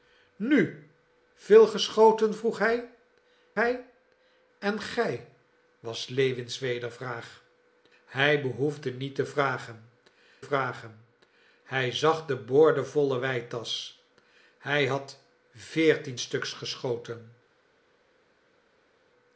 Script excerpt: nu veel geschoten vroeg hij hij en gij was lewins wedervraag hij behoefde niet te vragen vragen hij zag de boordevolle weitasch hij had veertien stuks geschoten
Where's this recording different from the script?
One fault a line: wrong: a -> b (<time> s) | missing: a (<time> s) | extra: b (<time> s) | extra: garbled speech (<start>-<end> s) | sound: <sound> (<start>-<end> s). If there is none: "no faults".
no faults